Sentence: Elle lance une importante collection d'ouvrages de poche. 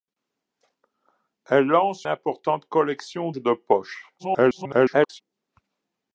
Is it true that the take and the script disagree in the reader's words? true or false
true